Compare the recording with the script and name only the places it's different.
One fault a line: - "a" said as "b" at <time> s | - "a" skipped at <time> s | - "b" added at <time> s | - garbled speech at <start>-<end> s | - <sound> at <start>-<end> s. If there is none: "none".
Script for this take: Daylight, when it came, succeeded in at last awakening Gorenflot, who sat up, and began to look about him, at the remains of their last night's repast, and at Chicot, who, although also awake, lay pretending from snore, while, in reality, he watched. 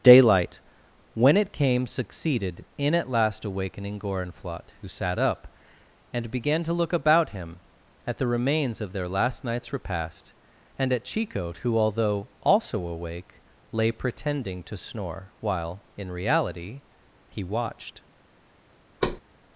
- "from" said as "to" at 14.6 s
- thud at 19.0-19.2 s